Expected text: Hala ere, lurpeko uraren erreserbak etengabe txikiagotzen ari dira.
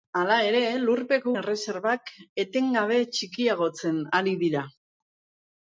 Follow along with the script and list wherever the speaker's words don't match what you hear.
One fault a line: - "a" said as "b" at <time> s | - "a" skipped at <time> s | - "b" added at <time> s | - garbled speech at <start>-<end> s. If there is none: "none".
- "uraren" skipped at 1.3 s